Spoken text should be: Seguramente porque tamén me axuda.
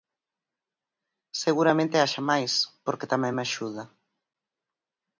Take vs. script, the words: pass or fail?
fail